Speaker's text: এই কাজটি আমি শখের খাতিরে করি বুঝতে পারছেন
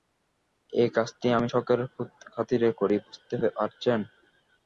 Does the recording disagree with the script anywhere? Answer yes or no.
no